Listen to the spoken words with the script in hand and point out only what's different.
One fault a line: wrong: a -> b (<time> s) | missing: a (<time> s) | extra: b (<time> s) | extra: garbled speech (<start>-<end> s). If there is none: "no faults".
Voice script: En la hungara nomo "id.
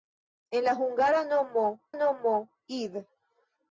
extra: nomo (1.9 s)